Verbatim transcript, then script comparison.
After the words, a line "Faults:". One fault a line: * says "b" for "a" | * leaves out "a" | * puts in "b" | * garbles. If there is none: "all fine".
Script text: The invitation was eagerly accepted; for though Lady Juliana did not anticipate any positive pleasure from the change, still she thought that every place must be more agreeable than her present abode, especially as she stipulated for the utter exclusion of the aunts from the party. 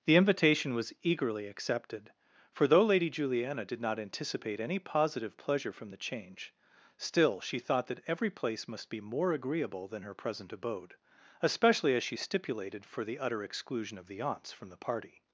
The invitation was eagerly accepted; for though Lady Juliana did not anticipate any positive pleasure from the change, still she thought that every place must be more agreeable than her present abode, especially as she stipulated for the utter exclusion of the aunts from the party.
Faults:
all fine